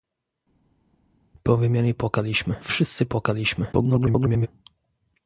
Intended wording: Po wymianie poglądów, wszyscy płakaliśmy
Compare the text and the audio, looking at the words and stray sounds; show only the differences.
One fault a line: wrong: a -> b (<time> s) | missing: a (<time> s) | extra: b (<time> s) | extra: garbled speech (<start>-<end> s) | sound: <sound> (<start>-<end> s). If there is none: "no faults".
wrong: poglądów -> płakaliśmy (1.9 s)
extra: garbled speech (3.7-4.5 s)